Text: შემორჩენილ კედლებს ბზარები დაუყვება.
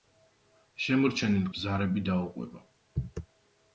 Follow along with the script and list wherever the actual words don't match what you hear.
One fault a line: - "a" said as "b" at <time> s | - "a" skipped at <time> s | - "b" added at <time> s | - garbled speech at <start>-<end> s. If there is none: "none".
- "კედლებს" skipped at 1.4 s